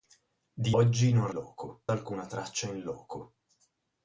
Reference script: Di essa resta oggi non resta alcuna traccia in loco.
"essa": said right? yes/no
no